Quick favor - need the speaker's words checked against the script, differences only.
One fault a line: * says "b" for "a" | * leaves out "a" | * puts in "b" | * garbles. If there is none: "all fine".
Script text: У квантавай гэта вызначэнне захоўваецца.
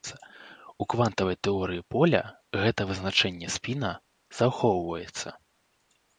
* puts in "тэорыі поля"
* puts in "спіна"